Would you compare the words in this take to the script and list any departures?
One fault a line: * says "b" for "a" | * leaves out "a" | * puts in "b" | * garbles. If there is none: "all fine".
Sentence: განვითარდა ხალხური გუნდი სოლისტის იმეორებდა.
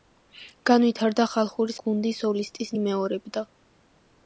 all fine